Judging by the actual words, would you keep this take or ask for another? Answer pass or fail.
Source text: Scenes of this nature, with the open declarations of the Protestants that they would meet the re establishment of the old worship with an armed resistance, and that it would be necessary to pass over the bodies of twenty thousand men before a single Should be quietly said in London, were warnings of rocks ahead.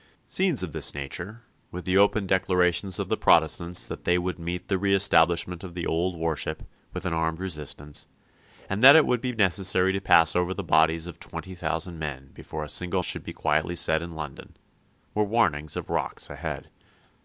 pass